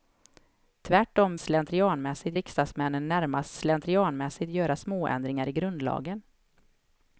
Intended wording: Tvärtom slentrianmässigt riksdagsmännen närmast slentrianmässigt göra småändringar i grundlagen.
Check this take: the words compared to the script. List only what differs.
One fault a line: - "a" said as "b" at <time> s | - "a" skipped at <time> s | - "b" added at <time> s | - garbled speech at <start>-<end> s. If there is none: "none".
none